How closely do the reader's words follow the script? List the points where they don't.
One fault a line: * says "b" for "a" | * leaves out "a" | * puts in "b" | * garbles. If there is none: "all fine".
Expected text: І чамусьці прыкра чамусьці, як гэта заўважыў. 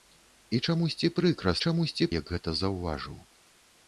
all fine